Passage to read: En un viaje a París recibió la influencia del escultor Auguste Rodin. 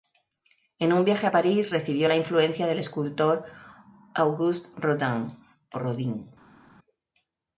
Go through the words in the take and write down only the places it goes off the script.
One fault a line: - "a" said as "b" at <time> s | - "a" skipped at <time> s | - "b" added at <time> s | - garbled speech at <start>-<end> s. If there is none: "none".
none